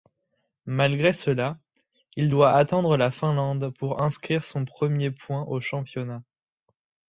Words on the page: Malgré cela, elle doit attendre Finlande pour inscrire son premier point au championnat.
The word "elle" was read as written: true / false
false